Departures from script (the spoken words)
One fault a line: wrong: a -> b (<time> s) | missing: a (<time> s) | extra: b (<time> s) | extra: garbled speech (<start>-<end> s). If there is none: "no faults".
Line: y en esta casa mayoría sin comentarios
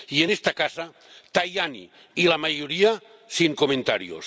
extra: tajani y la (1.3 s)